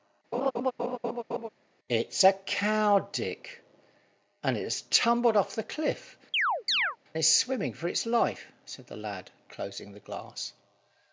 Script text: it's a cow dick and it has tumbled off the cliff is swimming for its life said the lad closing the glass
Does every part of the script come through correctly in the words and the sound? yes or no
no